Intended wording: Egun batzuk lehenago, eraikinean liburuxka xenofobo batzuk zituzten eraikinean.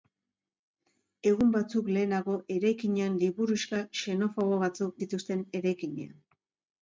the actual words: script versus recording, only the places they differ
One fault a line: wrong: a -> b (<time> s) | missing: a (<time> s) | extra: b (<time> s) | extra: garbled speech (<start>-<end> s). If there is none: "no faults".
no faults